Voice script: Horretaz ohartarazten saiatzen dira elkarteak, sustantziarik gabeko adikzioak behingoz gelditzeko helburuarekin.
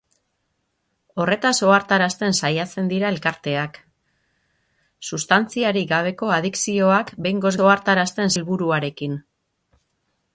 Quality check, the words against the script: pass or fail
fail